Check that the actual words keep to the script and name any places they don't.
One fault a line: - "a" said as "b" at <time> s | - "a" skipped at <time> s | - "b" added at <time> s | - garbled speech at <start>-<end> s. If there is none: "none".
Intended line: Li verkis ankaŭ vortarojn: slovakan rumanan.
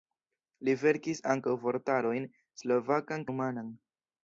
none